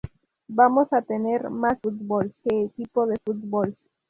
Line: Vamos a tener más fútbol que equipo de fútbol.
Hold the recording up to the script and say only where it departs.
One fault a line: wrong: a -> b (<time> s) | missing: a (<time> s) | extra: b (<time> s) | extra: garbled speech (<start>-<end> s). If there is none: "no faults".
no faults